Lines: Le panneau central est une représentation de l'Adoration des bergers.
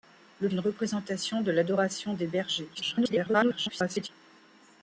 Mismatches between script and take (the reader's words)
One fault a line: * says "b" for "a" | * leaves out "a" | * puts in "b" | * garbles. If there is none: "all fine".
* leaves out "panneau central est"
* garbles